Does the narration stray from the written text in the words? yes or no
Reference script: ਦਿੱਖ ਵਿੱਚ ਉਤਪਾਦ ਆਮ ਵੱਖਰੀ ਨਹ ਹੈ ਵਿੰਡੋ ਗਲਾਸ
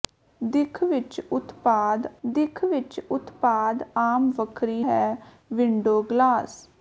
yes